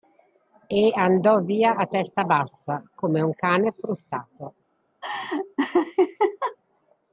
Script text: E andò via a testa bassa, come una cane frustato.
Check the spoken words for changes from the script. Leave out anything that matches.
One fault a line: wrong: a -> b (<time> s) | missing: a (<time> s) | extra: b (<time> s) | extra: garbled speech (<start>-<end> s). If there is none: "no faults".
wrong: una -> un (3.2 s)